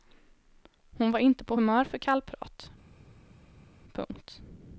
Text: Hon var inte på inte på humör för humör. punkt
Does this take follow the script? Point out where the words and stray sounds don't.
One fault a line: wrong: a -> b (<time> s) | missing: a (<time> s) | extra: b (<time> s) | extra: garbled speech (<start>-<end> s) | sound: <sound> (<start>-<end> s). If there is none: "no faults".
missing: inte på (1.6 s)
wrong: humör -> kallprat (2.0 s)